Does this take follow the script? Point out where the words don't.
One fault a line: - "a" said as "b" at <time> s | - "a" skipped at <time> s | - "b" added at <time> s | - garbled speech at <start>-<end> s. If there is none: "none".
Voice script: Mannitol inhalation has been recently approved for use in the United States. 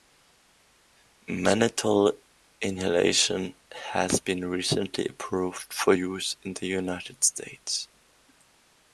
none